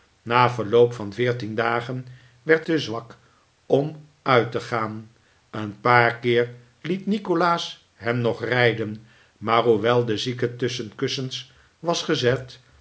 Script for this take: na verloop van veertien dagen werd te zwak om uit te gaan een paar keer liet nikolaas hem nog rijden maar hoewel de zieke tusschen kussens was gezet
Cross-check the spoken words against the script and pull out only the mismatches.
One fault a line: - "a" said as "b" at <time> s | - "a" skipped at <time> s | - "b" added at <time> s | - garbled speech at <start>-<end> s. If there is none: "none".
none